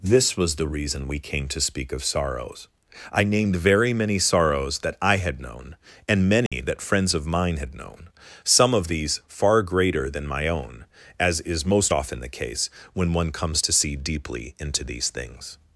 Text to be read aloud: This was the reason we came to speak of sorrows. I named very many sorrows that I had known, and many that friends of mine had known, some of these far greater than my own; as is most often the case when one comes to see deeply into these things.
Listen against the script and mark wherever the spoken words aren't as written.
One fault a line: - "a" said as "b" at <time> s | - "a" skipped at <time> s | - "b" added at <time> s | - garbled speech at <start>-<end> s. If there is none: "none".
none